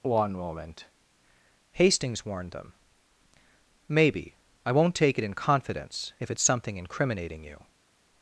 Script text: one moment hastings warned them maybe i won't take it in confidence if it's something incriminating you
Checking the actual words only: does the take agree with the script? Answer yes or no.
yes